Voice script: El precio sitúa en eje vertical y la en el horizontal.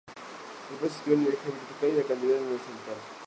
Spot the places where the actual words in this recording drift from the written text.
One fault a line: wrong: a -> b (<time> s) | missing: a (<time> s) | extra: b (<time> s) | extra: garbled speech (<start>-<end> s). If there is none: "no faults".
extra: se (0.9 s)
extra: el (1.2 s)
extra: cantidad (2.1 s)